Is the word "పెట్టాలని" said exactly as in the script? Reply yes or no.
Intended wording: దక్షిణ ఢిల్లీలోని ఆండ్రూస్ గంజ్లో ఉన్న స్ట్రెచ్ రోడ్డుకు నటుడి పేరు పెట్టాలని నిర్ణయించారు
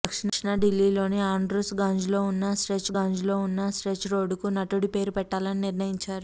yes